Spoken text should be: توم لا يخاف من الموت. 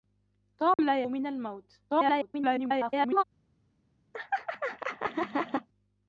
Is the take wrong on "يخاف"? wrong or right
wrong